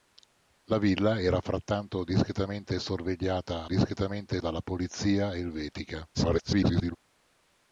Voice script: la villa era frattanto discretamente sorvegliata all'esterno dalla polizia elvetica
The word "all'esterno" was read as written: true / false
false